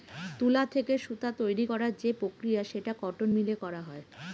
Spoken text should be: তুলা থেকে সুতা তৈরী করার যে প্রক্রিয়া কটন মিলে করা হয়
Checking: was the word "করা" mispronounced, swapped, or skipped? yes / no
no